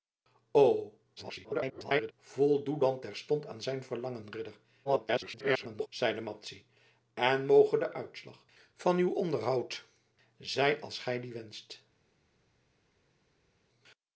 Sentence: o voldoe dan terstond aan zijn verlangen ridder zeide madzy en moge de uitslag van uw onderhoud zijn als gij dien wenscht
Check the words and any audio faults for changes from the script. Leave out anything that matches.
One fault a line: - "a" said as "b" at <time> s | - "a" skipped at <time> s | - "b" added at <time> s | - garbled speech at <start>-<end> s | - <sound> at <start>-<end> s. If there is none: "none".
- garbled speech at 1.2-2.1 s
- garbled speech at 4.8-5.9 s